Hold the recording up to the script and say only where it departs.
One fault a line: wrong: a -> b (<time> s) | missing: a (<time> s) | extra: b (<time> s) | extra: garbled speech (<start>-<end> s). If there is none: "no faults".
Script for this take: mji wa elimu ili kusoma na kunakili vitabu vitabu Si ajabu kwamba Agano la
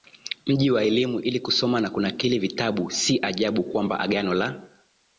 missing: vitabu (2.9 s)